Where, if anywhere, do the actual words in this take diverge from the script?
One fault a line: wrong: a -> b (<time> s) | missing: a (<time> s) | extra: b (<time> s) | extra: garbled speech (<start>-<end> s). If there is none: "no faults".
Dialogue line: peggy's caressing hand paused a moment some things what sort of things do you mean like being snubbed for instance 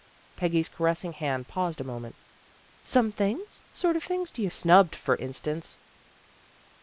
missing: what (3.6 s)
missing: mean like being (4.5 s)